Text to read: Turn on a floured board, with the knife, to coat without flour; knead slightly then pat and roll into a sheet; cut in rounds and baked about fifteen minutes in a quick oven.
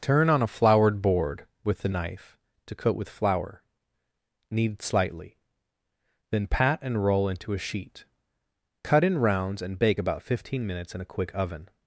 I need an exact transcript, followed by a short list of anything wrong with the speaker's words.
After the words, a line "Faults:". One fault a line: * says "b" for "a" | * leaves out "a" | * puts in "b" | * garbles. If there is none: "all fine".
Turn on a floured board, with the knife, to coat with flour; knead slightly then pat and roll into a sheet; cut in rounds and bake about fifteen minutes in a quick oven.
Faults:
* says "with" for "without"
* says "bake" for "baked"